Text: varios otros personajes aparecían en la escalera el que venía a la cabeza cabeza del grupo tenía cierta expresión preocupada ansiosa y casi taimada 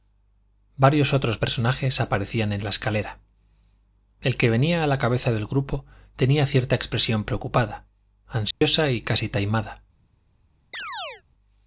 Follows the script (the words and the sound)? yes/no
no